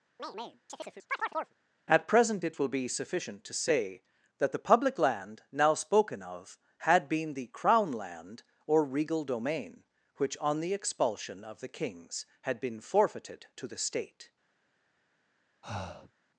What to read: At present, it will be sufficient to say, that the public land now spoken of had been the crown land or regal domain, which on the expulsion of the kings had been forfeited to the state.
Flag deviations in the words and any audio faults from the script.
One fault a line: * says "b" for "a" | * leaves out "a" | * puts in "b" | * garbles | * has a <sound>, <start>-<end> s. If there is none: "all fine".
* has a chirp, 0.2-1.6 s
* has a breath, 15.6-16.1 s